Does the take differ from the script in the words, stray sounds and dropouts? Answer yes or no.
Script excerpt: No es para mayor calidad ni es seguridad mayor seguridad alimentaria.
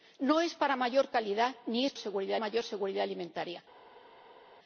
no